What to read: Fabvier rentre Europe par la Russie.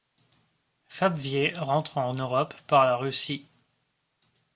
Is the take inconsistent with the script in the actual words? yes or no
yes